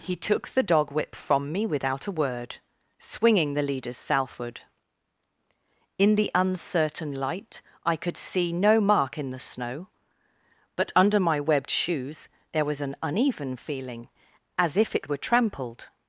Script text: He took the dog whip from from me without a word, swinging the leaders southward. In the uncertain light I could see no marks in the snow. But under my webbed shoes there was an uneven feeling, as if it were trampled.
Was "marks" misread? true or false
true